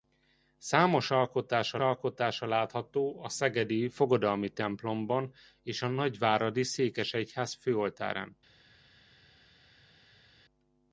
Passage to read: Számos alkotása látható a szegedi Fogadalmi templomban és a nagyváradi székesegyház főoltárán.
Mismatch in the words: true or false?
true